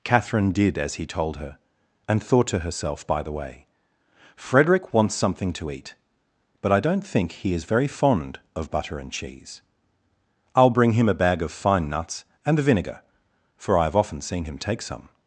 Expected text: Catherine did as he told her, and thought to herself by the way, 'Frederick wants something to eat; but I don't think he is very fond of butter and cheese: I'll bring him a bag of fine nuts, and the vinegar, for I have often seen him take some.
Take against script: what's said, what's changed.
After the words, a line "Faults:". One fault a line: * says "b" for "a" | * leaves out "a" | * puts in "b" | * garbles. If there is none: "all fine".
Catherine did as he told her, and thought to herself by the way, 'Frederick wants something to eat; but I don't think he is very fond of butter and cheese: I'll bring him a bag of fine nuts, and the vinegar, for I have often seen him take some.
Faults:
all fine